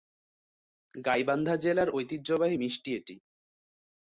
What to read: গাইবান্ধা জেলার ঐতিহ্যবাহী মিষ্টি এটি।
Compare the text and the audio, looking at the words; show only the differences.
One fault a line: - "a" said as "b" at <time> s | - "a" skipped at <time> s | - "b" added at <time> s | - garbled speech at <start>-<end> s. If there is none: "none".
none